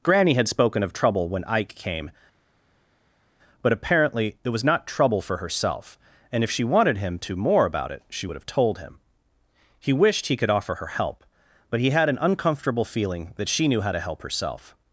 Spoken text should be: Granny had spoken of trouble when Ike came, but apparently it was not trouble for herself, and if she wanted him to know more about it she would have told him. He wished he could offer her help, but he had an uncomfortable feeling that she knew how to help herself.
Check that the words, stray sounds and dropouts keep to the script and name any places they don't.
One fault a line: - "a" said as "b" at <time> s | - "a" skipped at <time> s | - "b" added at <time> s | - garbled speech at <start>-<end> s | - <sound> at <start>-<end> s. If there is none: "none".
- "know" skipped at 7.3 s